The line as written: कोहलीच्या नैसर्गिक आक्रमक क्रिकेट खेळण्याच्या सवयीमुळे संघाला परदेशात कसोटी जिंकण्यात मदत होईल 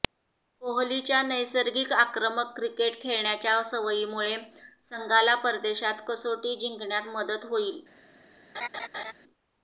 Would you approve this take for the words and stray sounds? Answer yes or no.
no